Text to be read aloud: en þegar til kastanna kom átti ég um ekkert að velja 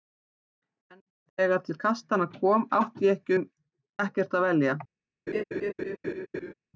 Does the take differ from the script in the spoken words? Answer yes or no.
no